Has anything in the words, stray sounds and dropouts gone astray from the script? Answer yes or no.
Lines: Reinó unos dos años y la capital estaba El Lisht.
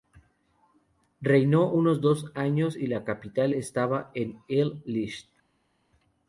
yes